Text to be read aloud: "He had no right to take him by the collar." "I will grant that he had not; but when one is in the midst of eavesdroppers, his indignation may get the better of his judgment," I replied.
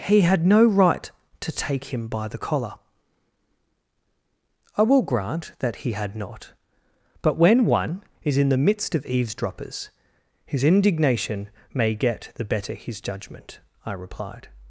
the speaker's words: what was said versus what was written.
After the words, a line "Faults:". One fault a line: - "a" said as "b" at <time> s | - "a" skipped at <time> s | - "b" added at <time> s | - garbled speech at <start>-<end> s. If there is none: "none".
"He had no right to take him by the collar." "I will grant that he had not; but when one is in the midst of eavesdroppers, his indignation may get the better his judgment," I replied.
Faults:
- "of" skipped at 12.7 s